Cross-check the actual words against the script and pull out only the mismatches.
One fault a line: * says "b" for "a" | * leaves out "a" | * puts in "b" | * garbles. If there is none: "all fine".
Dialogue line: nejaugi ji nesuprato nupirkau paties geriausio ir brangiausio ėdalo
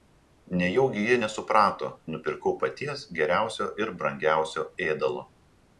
all fine